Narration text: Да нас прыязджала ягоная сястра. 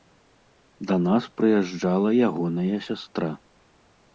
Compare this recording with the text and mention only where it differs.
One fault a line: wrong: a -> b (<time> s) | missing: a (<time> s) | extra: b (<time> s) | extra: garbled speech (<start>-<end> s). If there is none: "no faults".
no faults